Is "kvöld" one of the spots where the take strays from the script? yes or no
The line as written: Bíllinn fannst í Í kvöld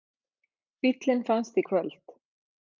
no